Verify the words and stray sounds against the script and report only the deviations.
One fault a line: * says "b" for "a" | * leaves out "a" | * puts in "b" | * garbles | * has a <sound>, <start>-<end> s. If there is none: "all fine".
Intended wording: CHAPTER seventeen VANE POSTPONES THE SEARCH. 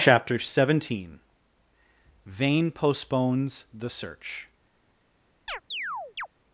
* has a chirp, 5.5-6.3 s